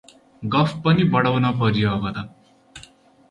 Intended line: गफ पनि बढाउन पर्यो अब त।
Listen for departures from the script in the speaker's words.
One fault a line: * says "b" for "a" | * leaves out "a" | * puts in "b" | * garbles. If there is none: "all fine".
all fine